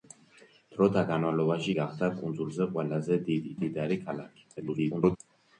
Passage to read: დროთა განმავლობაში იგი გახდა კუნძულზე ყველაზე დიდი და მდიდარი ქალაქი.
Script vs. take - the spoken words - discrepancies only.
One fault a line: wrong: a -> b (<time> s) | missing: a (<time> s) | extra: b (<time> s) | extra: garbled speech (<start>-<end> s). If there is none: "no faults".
missing: იგი (1.7 s)
missing: და (3.5 s)
extra: garbled speech (4.6-5.2 s)